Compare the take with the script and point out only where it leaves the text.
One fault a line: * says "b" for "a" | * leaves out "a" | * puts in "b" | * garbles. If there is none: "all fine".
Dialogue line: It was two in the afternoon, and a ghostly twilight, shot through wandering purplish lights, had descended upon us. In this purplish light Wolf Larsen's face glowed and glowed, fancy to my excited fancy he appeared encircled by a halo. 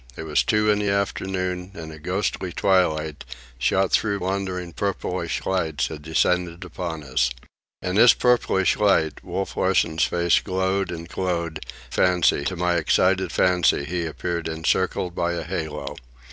all fine